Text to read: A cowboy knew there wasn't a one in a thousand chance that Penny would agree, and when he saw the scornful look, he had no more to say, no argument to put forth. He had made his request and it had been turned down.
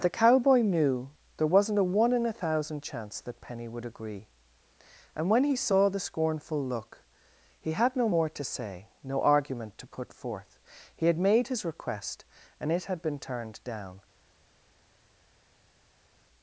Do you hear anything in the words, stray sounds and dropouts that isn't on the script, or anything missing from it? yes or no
yes